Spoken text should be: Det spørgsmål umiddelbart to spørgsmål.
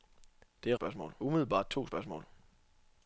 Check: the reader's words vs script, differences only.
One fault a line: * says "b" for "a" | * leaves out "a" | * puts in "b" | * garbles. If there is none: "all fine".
all fine